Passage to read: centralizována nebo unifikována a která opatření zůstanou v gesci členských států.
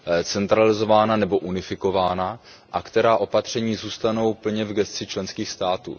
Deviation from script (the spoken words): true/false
true